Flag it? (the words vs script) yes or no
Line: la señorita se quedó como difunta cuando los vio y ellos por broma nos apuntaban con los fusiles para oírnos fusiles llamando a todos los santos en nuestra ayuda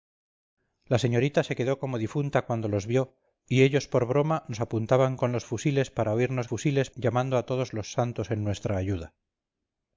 no